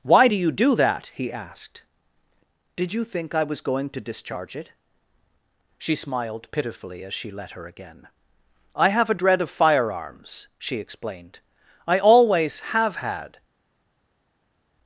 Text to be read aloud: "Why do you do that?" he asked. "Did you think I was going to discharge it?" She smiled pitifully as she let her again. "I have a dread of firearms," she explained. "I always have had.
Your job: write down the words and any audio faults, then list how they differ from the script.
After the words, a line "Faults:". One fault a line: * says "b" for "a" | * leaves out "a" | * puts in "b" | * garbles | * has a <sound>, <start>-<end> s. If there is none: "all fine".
"Why do you do that?" he asked. "Did you think I was going to discharge it?" She smiled pitifully as she let her again. "I have a dread of firearms," she explained. "I always have had.
Faults:
all fine